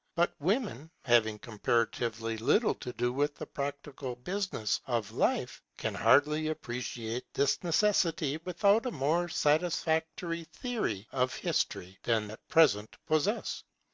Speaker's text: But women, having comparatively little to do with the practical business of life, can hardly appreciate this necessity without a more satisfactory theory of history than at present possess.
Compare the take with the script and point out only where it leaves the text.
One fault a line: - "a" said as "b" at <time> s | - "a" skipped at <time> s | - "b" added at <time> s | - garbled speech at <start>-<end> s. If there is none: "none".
none